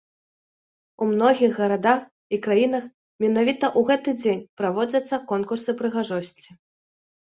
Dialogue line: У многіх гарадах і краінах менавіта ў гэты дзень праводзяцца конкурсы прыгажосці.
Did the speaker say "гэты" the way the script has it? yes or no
yes